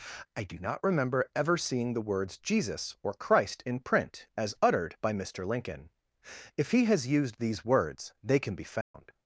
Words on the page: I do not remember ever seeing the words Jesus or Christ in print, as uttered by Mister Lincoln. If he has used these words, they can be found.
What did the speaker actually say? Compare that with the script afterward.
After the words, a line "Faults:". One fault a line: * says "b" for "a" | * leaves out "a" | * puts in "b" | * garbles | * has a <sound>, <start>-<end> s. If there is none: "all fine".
I do not remember ever seeing the words Jesus or Christ in print, as uttered by Mister Lincoln. If he has used these words, they can be found.
Faults:
* has a dropout, 8.8-8.9 s